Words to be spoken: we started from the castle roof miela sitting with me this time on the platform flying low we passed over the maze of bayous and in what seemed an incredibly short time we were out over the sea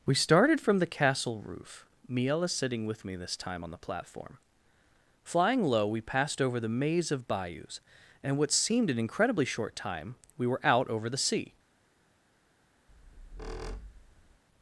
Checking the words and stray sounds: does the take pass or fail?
fail